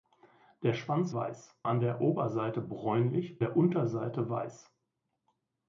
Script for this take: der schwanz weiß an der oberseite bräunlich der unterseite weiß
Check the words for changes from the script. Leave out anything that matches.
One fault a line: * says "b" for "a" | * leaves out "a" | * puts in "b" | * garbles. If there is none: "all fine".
all fine